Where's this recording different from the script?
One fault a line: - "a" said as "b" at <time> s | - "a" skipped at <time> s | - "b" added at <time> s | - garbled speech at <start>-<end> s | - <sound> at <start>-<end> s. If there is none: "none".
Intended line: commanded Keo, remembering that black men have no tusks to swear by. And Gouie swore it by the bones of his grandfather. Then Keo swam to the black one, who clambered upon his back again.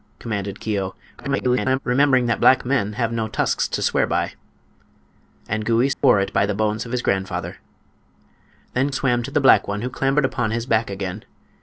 - garbled speech at 1.2-1.8 s
- dropout at 5.9-6.0 s
- "Keo" skipped at 8.9 s